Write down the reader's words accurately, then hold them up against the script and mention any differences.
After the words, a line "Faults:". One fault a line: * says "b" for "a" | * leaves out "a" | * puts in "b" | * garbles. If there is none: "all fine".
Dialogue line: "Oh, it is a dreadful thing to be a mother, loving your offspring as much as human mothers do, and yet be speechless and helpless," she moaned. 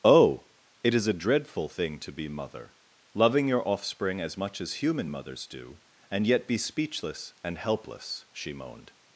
"Oh, it is a dreadful thing to be mother, loving your offspring as much as human mothers do, and yet be speechless and helpless," she moaned.
Faults:
* leaves out "a"